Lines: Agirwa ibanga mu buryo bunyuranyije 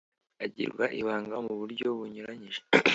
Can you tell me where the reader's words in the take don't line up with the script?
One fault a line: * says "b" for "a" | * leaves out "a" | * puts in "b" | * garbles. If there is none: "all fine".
all fine